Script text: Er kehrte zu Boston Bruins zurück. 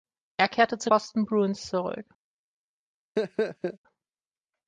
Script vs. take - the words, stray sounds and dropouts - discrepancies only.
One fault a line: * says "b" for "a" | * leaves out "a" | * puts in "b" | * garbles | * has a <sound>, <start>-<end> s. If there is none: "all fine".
* has a laugh, 3.2-3.8 s